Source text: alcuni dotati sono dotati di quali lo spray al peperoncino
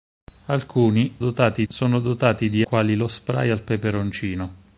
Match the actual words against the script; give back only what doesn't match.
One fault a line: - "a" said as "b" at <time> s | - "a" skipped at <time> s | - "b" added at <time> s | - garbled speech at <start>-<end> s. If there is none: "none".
none